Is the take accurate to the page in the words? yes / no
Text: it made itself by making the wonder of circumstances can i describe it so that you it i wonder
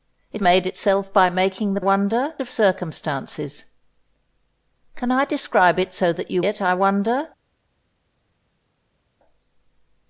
yes